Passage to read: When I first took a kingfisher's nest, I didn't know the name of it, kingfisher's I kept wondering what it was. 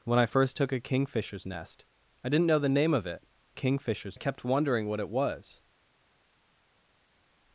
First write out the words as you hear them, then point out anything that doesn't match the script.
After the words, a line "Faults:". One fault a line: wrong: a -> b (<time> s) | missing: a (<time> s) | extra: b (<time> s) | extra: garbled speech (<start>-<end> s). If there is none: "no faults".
When I first took a kingfisher's nest, I didn't know the name of it, kingfisher's I kept wondering what it was.
Faults:
no faults